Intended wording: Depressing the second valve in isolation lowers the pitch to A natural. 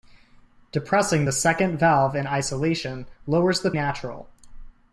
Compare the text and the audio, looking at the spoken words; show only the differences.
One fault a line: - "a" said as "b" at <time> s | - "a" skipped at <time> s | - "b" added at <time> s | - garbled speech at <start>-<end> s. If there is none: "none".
- "pitch to A" skipped at 3.7 s